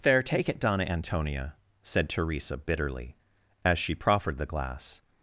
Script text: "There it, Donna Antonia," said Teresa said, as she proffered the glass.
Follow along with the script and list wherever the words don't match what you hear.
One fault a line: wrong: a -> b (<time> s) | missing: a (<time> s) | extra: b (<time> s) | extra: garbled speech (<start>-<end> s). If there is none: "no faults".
extra: take (0.2 s)
wrong: said -> bitterly (2.6 s)